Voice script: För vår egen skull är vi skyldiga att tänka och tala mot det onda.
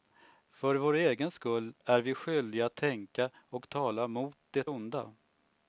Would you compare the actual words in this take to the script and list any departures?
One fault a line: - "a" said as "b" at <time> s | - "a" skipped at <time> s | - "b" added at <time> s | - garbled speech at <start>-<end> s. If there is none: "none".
none